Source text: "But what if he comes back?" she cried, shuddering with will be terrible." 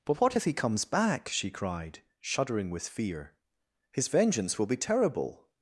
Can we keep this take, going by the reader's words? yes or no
no